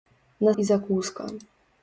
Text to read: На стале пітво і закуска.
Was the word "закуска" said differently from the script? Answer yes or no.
no